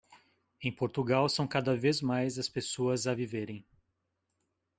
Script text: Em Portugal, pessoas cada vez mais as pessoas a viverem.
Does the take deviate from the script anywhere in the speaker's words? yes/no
yes